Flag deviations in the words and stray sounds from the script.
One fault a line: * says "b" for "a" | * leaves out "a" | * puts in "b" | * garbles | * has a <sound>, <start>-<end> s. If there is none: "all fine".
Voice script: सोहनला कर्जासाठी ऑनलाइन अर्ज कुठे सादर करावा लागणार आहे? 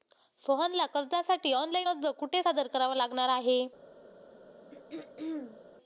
* has a throat clearing, 4.7-5.6 s